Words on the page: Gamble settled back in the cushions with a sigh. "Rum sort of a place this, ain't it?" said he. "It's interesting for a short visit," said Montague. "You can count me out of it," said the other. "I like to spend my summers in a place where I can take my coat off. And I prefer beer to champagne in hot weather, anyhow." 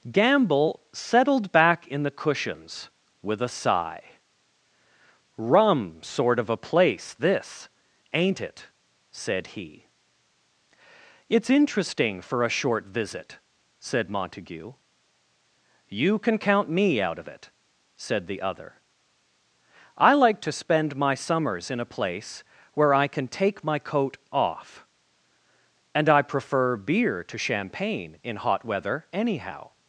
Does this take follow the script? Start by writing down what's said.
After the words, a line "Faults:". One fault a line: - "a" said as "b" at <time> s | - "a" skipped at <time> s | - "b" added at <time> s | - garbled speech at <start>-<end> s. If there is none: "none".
Gamble settled back in the cushions with a sigh. "Rum sort of a place this, ain't it?" said he. "It's interesting for a short visit," said Montague. "You can count me out of it," said the other. "I like to spend my summers in a place where I can take my coat off. And I prefer beer to champagne in hot weather, anyhow."
Faults:
none